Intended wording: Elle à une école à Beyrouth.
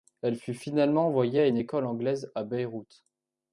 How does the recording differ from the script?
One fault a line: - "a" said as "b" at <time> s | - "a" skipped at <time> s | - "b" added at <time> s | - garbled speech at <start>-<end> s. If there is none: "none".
- "fut finalement envoyée" added at 0.3 s
- "anglaise" added at 1.9 s